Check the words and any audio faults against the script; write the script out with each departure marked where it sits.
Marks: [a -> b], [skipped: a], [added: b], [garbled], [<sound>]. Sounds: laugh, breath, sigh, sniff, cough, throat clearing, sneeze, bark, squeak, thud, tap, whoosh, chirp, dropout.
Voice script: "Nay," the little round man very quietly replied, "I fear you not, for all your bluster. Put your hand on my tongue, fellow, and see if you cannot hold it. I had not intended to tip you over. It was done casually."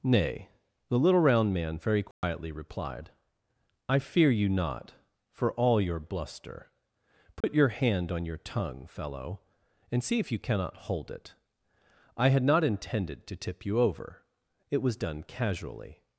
"Nay," the little round man very quietly [dropout] replied, "I fear you not, for all your bluster. Put [dropout] your hand on [my -> your] tongue, fellow, and see if you cannot hold it. I had not intended to tip you over. It was done casually."